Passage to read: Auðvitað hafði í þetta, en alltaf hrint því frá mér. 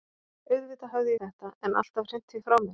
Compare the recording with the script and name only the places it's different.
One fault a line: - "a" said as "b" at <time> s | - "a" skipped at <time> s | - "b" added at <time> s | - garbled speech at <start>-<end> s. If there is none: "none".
none